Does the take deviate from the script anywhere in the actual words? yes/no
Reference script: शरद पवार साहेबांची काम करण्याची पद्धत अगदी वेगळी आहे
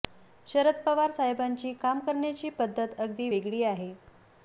no